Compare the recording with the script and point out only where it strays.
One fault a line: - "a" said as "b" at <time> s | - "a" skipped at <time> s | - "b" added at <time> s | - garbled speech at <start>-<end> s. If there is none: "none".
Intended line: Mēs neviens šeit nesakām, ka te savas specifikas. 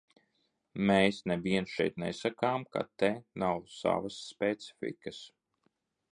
- "nav" added at 3.5 s